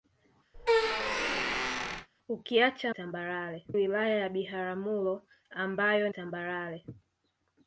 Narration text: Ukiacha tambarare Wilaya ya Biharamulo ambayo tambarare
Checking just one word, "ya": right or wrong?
right